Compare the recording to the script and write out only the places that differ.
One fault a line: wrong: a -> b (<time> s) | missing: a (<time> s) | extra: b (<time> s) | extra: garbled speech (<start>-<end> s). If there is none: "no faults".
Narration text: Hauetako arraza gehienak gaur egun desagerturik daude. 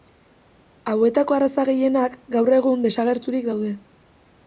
no faults